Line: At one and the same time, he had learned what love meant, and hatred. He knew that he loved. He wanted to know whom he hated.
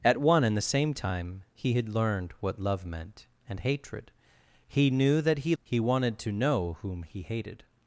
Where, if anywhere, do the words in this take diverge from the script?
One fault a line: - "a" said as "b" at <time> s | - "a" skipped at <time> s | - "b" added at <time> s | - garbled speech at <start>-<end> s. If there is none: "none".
- "loved" skipped at 5.5 s